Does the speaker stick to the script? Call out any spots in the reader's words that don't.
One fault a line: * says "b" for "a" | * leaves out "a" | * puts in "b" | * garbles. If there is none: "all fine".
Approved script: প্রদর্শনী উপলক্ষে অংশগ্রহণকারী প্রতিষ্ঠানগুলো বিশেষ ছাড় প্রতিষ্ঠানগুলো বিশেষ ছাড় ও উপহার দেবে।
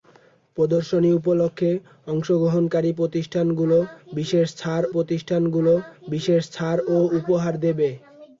all fine